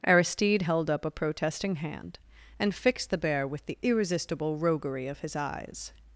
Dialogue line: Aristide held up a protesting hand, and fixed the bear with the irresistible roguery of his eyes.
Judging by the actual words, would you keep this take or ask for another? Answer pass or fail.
pass